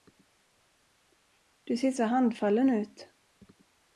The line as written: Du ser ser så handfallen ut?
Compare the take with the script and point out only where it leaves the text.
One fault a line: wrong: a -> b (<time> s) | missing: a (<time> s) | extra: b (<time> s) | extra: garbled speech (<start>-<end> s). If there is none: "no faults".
missing: ser (1.9 s)